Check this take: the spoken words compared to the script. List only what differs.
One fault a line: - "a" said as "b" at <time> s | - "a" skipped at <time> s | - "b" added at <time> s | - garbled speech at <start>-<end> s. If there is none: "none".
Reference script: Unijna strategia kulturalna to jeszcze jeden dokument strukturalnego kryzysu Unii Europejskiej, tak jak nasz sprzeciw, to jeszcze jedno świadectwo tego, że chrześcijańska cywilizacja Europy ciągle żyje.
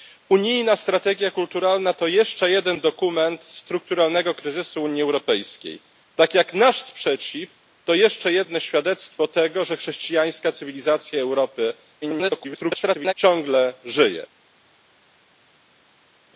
- garbled speech at 12.0-13.1 s